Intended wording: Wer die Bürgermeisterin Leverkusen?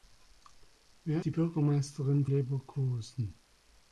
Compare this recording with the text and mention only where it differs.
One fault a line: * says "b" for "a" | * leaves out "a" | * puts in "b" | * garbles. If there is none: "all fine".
all fine